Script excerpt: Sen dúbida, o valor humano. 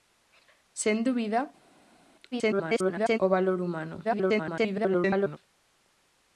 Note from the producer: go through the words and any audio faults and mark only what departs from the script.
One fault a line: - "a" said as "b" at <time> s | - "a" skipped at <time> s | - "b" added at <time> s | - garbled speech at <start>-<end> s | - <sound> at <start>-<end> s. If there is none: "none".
- garbled speech at 2.3-3.2 s
- garbled speech at 4.0-5.4 s